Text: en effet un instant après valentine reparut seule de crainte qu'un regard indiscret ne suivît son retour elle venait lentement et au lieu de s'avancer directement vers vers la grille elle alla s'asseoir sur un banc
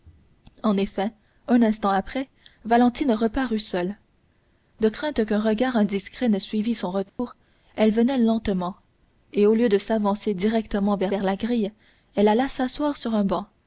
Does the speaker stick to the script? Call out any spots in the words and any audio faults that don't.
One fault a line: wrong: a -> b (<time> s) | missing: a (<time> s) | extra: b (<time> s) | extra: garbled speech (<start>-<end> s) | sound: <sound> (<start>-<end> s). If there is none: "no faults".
sound: dropout (7.1-7.2 s)